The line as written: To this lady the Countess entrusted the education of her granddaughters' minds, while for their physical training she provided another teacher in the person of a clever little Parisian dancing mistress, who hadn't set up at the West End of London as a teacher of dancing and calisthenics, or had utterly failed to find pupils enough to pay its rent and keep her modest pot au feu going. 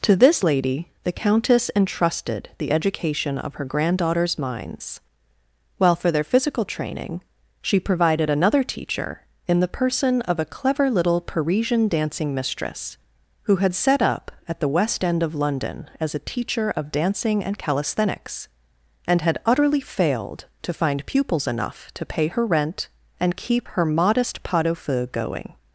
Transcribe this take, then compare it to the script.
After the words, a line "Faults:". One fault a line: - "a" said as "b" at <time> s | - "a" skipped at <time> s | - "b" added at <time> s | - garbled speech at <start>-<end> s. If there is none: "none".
To this lady the Countess entrusted the education of her granddaughters' minds, while for their physical training she provided another teacher in the person of a clever little Parisian dancing mistress, who had set up at the West End of London as a teacher of dancing and calisthenics, and had utterly failed to find pupils enough to pay her rent and keep her modest pot au feu going.
Faults:
- "hadn't" said as "had" at 13.6 s
- "or" said as "and" at 19.1 s
- "its" said as "her" at 22.3 s